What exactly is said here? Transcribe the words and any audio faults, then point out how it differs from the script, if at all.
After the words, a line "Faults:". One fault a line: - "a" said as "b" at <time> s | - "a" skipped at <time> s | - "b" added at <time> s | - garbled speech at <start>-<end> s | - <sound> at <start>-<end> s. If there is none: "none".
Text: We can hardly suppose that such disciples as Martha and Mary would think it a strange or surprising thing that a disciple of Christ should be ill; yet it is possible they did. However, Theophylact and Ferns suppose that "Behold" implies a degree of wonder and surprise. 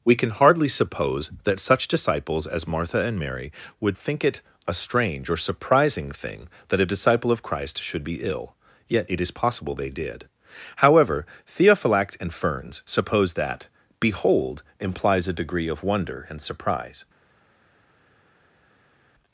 We can hardly suppose that such disciples as Martha and Mary would think it a strange or surprising thing that a disciple of Christ should be ill; yet it is possible they did. However, Theophylact and Ferns suppose that "Behold" implies a degree of wonder and surprise.
Faults:
none